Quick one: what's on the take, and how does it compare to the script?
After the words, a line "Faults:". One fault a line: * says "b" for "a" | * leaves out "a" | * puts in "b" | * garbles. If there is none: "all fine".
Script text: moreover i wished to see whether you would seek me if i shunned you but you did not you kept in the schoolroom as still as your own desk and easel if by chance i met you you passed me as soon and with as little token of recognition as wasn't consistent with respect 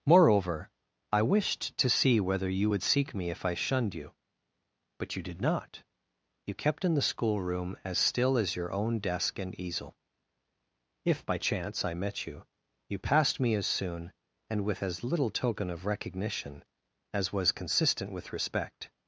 moreover i wished to see whether you would seek me if i shunned you but you did not you kept in the schoolroom as still as your own desk and easel if by chance i met you you passed me as soon and with as little token of recognition as was consistent with respect
Faults:
* says "was" for "wasn't"